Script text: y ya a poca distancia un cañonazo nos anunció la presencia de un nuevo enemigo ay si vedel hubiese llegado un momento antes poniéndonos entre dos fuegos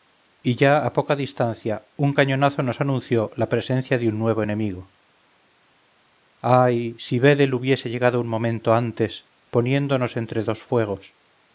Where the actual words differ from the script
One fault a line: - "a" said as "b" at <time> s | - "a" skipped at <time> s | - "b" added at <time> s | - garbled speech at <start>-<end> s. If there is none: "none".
none